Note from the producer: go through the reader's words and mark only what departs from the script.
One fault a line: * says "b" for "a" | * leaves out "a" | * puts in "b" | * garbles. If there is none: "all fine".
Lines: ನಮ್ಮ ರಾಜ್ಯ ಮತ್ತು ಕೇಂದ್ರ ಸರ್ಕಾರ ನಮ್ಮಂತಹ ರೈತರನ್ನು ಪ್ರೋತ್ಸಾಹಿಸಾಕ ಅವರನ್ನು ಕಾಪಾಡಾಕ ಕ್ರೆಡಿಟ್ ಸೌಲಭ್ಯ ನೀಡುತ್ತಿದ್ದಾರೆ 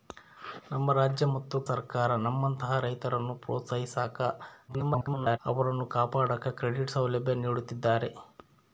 * leaves out "ಕೇಂದ್ರ"
* garbles